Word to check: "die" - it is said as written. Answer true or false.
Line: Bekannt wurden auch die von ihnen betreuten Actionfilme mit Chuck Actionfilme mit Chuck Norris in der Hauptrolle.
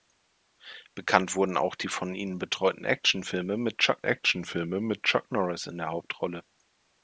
true